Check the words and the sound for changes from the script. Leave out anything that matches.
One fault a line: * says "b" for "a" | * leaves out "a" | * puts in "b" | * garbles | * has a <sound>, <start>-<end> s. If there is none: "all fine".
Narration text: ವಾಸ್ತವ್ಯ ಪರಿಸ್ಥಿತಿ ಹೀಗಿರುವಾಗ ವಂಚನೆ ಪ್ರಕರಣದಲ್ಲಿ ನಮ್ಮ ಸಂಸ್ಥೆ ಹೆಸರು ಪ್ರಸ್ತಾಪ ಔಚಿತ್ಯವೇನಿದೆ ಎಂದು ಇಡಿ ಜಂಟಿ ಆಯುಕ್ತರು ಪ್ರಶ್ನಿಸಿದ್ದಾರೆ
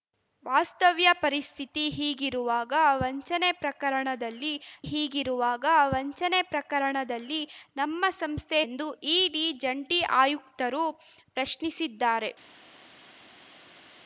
* says "ಹೀಗಿರುವಾಗ ವಂಚನೆ ಪ್ರಕರಣದಲ್ಲಿ ನಮ್ಮ ಸಂಸ್ಥೆ" for "ನಮ್ಮ ಸಂಸ್ಥೆ ಹೆಸರು ಪ್ರಸ್ತಾಪ ಔಚಿತ್ಯವೇನಿದೆ"